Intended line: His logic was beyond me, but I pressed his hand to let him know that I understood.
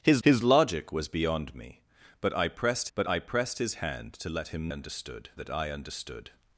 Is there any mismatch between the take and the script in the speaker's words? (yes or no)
yes